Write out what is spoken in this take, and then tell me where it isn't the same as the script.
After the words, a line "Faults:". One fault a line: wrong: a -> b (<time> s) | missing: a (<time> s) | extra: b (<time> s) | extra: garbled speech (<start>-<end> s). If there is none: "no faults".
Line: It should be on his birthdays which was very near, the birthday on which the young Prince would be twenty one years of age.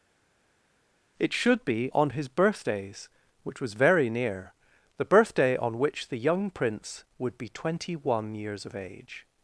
It should be on his birthdays which was very near, the birthday on which the young Prince would be twenty one years of age.
Faults:
no faults